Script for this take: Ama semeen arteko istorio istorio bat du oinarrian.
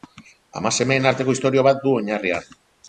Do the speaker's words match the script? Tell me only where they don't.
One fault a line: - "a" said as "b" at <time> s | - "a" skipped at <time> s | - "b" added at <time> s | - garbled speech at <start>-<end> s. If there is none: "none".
- "istorio" skipped at 1.7 s